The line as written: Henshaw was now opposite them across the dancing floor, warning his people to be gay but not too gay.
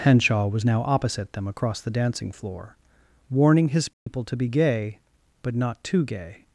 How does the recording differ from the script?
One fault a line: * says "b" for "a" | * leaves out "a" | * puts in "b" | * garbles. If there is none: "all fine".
all fine